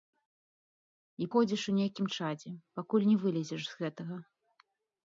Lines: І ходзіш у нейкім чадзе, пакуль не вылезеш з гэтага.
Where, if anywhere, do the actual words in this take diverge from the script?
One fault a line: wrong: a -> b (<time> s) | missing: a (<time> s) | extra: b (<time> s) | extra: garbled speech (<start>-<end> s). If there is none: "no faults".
no faults